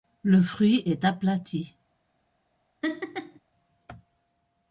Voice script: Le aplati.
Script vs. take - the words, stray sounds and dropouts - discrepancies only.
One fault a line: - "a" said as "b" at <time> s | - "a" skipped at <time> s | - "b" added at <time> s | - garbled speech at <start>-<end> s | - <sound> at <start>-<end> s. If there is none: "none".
- "fruit est" added at 0.4 s
- laugh at 2.8-3.4 s